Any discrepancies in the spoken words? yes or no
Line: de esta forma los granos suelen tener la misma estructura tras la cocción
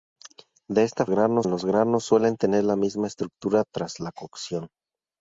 yes